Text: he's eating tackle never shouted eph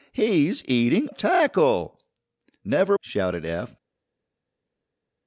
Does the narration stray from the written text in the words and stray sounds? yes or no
no